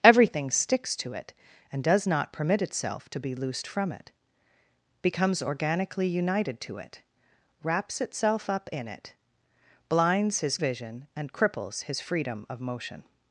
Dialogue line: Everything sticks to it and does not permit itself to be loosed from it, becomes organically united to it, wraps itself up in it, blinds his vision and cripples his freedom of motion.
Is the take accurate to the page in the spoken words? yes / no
yes